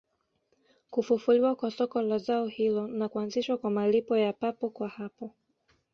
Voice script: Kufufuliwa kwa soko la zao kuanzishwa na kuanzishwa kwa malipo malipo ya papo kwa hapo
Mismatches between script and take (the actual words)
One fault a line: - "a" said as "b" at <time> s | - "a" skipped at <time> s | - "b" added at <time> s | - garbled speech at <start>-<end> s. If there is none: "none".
- "kuanzishwa" said as "hilo" at 2.5 s
- "malipo" skipped at 4.2 s